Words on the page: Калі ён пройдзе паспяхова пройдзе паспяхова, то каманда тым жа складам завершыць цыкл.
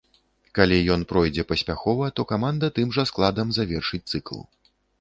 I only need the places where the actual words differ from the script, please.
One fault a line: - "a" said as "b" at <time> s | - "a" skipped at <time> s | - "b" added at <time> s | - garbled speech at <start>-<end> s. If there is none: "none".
- "пройдзе паспяхова" skipped at 2.1 s